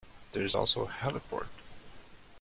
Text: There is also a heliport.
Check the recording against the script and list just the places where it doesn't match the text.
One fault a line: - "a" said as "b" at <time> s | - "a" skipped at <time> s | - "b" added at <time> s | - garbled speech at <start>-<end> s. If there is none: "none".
none